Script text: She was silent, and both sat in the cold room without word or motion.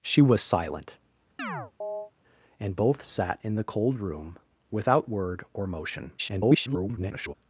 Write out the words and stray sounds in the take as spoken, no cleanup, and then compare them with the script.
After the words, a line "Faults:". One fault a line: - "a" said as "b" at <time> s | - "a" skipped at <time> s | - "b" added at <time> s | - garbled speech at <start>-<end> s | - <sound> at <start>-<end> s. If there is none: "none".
She was silent, and both sat in the cold room without word or motion. [garbled]
Faults:
- chirp at 1.4-2.1 s
- garbled speech at 6.2-7.3 s